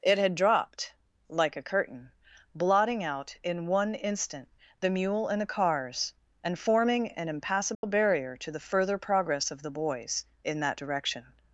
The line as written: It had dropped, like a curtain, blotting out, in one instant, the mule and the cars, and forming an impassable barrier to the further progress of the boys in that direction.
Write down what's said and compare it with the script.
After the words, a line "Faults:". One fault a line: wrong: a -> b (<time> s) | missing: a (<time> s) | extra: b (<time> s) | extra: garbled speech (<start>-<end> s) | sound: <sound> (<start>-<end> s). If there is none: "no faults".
It had dropped, like a curtain, blotting out, in one instant, the mule and the cars, and forming an impassable barrier to the further progress of the boys in that direction.
Faults:
sound: dropout (7.7-7.8 s)